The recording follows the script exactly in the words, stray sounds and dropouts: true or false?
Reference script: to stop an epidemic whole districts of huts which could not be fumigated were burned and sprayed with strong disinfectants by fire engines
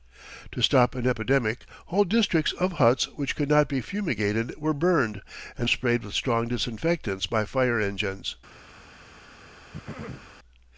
false